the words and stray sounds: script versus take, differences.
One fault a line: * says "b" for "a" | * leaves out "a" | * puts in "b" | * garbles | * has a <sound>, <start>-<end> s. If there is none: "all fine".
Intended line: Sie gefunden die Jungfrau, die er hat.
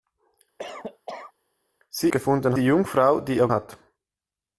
* has a cough, 0.6-1.3 s